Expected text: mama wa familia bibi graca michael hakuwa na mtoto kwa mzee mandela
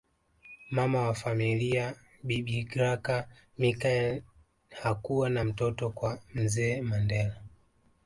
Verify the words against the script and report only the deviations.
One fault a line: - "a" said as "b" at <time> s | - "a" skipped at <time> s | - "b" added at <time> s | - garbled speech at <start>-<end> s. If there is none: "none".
none